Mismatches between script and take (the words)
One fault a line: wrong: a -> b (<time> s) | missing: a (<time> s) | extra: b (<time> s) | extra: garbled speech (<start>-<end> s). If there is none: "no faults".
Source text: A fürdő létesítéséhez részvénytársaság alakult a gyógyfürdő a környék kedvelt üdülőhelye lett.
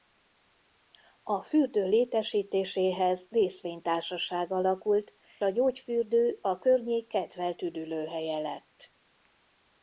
no faults